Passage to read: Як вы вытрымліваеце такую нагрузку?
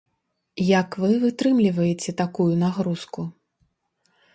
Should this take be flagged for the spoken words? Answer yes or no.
no